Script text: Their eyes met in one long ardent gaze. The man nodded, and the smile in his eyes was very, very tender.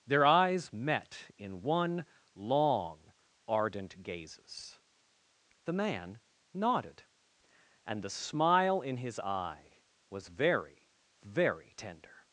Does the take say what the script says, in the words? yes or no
no